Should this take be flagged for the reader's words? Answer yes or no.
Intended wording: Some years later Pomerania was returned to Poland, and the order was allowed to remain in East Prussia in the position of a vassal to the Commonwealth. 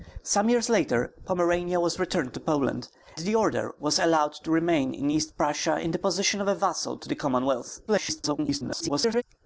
yes